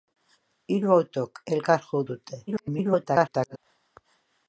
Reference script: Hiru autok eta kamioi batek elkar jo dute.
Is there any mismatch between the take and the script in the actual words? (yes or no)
yes